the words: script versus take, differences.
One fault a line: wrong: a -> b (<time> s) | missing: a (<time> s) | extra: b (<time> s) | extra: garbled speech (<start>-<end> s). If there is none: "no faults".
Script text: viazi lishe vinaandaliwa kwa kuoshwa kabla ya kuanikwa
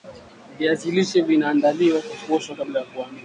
no faults